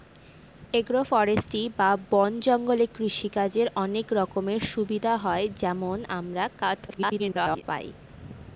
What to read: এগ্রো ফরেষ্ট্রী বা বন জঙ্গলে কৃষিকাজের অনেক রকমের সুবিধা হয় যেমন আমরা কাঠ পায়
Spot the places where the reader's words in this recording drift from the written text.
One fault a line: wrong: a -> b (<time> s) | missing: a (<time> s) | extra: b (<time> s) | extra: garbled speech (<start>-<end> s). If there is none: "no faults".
extra: garbled speech (6.9-7.6 s)